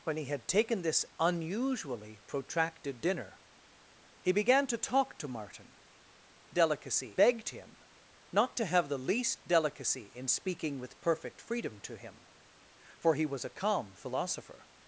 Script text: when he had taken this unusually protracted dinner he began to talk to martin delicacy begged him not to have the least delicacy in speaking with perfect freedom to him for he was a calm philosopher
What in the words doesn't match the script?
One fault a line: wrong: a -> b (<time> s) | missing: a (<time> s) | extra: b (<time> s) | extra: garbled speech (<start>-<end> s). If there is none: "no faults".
no faults